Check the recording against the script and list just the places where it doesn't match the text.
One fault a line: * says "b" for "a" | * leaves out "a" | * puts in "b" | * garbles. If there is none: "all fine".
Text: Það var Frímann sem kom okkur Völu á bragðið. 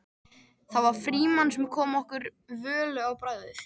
all fine